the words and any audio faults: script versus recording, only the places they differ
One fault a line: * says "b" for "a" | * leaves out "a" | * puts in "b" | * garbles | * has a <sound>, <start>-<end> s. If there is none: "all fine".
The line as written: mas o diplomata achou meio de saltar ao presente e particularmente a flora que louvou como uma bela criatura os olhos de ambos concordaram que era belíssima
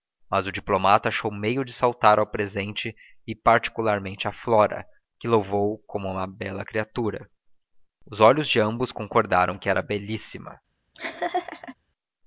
* has a laugh, 10.9-11.8 s